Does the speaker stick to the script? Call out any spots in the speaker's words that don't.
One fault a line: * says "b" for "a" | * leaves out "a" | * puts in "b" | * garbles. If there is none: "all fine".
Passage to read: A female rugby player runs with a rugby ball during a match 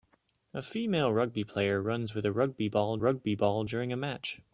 * puts in "rugby ball"